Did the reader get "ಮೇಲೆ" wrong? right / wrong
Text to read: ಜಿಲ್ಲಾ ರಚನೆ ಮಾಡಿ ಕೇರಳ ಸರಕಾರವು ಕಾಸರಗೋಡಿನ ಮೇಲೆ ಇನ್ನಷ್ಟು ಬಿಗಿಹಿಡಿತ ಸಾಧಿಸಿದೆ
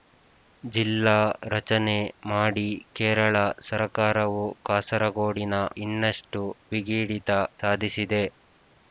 wrong